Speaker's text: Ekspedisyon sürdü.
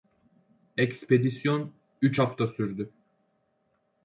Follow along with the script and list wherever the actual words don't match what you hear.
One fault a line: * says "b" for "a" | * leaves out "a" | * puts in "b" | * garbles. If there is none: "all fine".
* puts in "üç hafta"